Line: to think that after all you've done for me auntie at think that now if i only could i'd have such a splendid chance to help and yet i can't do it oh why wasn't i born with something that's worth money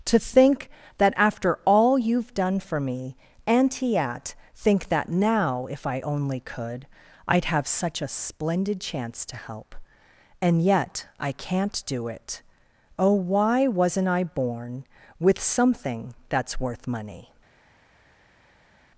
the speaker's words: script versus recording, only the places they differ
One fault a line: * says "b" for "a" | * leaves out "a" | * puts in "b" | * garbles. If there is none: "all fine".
all fine